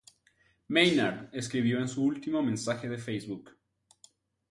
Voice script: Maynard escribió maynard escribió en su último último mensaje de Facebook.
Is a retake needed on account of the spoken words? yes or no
yes